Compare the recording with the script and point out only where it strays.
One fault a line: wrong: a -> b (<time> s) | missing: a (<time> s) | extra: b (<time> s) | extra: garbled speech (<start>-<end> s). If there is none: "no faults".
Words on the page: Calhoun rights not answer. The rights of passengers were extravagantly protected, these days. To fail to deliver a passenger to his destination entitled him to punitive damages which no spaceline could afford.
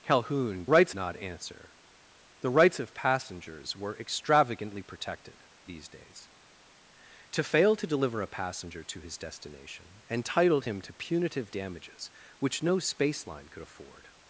no faults